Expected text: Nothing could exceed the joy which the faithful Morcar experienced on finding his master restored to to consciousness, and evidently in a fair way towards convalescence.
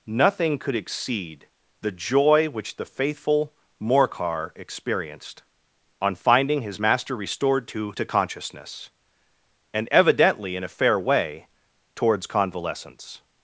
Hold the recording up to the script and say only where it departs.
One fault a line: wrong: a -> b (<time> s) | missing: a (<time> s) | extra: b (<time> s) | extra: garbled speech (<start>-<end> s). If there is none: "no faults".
no faults